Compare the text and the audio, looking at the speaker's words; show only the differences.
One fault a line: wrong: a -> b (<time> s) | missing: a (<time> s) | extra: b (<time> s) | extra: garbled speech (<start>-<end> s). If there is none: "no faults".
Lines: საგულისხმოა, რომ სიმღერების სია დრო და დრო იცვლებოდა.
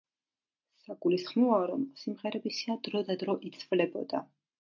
no faults